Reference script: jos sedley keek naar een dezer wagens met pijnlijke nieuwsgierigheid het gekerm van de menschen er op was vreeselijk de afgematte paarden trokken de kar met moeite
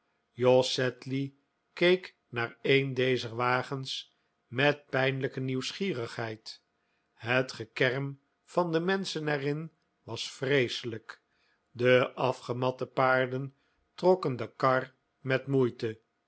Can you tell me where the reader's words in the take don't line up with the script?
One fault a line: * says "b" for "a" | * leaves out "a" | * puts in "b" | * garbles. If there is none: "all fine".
* says "in" for "op"